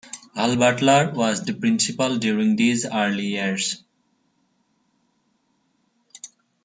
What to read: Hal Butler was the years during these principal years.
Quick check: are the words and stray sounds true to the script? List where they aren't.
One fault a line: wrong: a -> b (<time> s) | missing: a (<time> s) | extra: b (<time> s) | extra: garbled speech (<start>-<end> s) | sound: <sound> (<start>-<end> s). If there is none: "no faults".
wrong: years -> principal (1.5 s)
wrong: principal -> early (2.9 s)